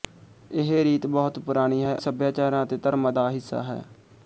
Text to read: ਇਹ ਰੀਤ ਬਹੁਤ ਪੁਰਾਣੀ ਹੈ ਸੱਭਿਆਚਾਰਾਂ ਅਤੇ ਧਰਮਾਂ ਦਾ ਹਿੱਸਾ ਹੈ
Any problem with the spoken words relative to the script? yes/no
no